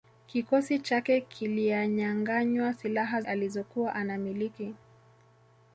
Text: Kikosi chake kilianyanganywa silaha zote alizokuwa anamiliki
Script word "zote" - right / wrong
wrong